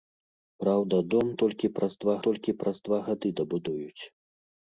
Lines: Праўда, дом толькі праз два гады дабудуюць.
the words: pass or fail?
fail